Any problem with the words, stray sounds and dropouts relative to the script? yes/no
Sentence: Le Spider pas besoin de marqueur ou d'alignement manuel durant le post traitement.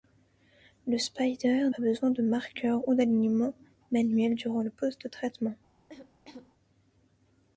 yes